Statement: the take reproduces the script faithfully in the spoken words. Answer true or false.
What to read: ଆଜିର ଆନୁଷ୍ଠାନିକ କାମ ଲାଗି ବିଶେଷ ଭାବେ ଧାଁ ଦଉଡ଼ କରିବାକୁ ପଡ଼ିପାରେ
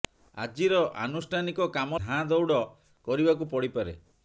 false